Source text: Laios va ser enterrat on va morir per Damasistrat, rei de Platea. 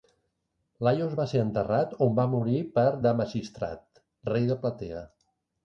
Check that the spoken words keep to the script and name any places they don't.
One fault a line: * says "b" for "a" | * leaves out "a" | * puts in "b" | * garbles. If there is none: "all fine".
all fine